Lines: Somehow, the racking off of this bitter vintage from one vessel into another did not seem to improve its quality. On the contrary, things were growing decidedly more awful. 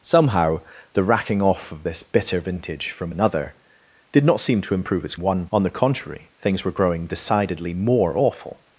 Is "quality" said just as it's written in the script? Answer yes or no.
no